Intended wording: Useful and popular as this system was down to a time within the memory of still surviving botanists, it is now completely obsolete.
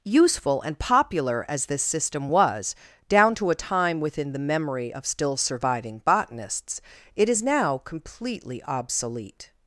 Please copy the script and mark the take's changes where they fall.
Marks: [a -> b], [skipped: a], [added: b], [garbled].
Useful and popular as this system was down to a time within the memory of still surviving botanists, it is now completely obsolete.